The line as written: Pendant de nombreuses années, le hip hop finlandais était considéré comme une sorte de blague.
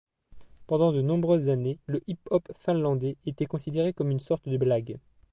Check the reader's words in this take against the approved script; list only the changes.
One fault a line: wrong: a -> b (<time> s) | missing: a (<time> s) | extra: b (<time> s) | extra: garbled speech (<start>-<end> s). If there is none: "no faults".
no faults